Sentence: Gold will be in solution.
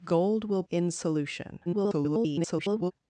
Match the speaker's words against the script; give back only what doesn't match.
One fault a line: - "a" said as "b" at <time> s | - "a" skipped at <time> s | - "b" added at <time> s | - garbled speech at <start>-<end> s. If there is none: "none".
- "be" skipped at 0.6 s
- garbled speech at 1.6-2.9 s